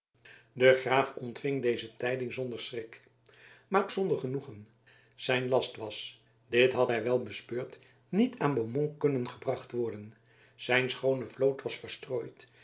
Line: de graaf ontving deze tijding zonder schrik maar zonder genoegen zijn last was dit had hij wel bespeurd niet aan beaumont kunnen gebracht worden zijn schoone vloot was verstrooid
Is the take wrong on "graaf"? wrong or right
right